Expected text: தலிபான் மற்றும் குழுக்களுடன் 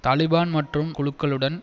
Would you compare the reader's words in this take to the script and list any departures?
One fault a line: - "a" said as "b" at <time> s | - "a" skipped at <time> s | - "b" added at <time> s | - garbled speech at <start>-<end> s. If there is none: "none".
none